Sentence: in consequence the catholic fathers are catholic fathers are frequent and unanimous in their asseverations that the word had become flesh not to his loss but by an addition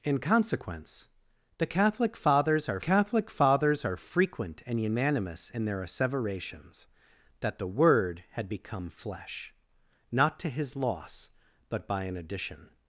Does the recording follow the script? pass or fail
pass